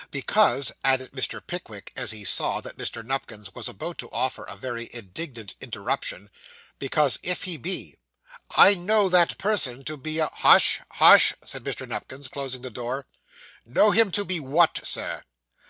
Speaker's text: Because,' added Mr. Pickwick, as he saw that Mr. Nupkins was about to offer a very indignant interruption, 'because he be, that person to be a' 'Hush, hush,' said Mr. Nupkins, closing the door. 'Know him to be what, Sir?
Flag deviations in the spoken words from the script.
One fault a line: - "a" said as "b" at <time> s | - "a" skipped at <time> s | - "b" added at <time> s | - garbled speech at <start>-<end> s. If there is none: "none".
- "if" added at 7.2 s
- "I know" added at 8.6 s